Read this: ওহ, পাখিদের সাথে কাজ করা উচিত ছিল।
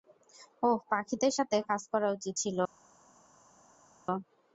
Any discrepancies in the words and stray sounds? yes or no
no